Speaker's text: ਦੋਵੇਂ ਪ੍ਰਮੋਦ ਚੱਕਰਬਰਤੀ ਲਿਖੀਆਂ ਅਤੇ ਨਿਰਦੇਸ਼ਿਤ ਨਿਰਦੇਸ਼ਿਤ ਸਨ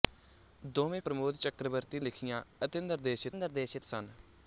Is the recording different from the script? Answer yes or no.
no